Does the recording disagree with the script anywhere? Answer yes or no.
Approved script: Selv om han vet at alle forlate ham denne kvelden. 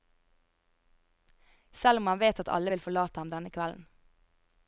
yes